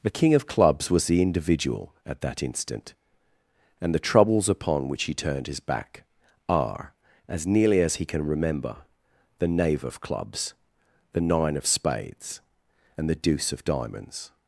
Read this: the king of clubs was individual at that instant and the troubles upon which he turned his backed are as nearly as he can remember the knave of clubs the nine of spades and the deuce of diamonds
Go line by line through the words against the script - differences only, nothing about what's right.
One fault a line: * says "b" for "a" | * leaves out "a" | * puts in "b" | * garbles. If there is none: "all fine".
* puts in "the"
* says "back" for "backed"